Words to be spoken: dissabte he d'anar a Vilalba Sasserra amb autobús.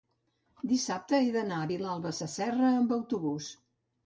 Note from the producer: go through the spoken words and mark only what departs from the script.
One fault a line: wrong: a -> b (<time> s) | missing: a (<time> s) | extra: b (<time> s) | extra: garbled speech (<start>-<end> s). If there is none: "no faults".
no faults